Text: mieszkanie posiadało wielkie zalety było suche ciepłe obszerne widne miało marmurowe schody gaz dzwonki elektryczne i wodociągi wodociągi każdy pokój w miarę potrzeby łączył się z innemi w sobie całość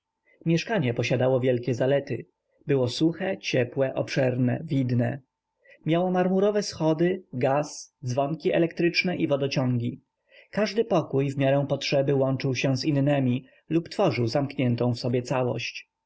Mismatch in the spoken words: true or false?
true